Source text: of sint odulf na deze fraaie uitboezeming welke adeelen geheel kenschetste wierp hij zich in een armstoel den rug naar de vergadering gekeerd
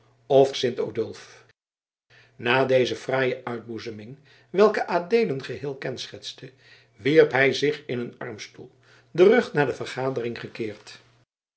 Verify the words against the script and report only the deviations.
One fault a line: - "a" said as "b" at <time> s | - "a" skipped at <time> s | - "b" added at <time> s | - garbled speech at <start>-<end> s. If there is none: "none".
none